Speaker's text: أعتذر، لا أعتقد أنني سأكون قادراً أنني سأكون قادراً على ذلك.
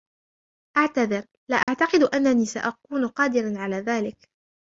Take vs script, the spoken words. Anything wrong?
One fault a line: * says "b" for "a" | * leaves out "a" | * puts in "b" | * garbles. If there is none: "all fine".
* leaves out "أنني سأكون قادراً"